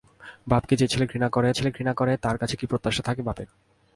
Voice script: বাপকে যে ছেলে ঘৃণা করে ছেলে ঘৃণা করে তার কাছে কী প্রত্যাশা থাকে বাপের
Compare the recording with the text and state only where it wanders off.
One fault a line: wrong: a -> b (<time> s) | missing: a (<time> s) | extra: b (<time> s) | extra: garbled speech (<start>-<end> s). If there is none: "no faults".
no faults